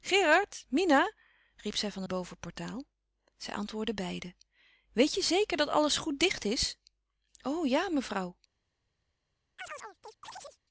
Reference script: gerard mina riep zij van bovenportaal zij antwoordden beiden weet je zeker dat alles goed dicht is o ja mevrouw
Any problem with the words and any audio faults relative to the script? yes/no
yes